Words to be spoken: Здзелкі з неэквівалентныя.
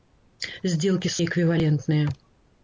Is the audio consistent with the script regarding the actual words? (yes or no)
yes